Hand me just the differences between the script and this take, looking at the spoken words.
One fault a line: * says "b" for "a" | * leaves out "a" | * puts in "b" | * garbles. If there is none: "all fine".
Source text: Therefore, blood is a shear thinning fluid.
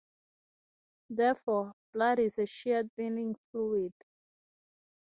all fine